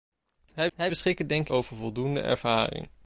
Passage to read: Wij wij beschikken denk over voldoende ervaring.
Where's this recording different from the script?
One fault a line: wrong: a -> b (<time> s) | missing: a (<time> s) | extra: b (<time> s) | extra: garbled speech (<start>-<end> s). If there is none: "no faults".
no faults